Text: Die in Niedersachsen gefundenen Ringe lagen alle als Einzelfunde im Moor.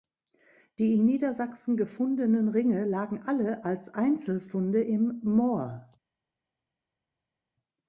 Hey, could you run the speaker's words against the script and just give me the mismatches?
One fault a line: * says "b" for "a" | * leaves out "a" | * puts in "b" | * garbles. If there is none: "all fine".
all fine